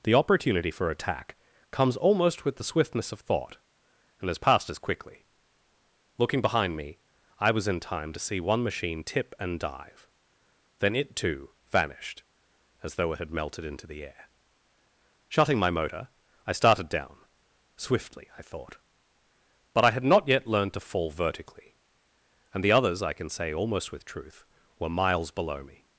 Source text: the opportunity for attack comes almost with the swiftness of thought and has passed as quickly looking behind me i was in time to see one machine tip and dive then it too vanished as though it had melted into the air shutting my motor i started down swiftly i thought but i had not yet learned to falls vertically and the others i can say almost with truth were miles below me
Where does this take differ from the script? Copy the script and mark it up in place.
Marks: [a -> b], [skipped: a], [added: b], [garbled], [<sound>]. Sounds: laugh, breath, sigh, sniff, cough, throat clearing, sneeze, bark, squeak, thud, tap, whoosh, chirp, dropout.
the opportunity for attack comes almost with the swiftness of thought and has passed as quickly looking behind me i was in time to see one machine tip and dive then it too vanished as though it had melted into the air shutting my motor i started down swiftly i thought but i had not yet learned to [falls -> fall] vertically and the others i can say almost with truth were miles below me